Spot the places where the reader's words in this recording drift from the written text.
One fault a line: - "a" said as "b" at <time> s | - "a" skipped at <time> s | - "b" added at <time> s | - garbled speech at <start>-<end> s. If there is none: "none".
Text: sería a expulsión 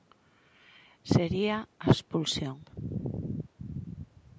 none